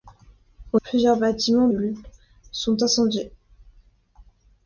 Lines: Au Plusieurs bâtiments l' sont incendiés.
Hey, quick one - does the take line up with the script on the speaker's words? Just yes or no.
yes